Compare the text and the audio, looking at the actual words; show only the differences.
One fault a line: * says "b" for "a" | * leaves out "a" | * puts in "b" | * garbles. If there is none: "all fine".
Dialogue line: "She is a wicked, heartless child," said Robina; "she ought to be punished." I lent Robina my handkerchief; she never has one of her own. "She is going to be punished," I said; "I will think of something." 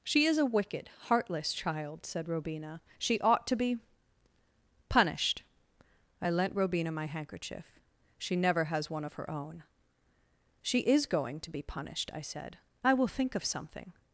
all fine